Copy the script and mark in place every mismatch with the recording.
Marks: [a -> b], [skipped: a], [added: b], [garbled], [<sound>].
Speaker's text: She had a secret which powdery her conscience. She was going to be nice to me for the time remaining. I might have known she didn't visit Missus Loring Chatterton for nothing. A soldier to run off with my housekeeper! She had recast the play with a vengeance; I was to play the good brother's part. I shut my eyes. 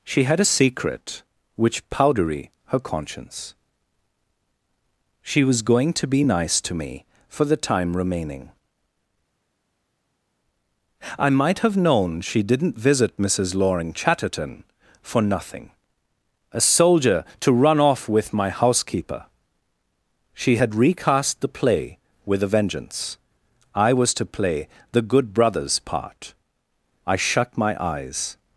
She had a secret which powdery her conscience. She was going to be nice to me for the time remaining. I might have known she didn't visit Missus Loring Chatterton for nothing. A soldier to run off with my housekeeper! She had recast the play with a vengeance; I was to play the good brother's part. I shut my eyes.